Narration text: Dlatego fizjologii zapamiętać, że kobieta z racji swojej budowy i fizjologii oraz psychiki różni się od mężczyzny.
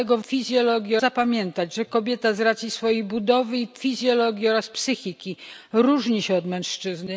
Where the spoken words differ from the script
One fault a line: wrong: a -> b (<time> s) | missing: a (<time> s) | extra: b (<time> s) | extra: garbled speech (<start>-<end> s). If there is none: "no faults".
no faults